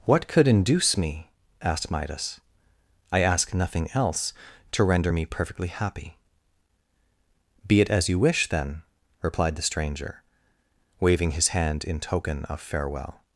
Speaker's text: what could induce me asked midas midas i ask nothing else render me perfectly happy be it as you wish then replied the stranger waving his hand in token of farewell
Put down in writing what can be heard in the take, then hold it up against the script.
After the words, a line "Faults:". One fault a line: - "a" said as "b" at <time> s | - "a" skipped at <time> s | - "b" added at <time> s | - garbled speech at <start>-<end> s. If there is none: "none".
what could induce me asked midas i ask nothing else to render me perfectly happy be it as you wish then replied the stranger waving his hand in token of farewell
Faults:
- "midas" skipped at 2.4 s
- "to" added at 4.7 s